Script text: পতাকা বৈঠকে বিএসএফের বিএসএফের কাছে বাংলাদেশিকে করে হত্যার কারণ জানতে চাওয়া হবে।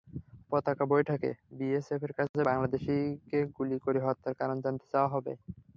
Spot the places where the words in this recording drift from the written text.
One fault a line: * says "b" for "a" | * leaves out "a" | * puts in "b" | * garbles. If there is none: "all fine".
* leaves out "বিএসএফের"
* puts in "গুলি"